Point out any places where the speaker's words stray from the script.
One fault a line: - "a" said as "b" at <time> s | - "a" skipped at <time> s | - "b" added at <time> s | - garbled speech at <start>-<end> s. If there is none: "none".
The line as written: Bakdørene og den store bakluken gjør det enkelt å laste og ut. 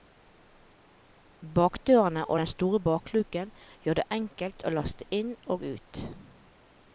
- "inn" added at 5.2 s